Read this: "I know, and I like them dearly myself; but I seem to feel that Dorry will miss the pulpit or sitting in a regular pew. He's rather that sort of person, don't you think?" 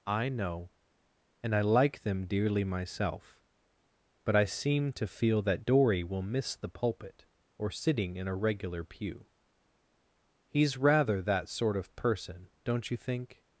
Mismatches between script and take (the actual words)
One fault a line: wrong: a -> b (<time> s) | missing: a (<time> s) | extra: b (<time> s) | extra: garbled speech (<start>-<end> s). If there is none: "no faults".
no faults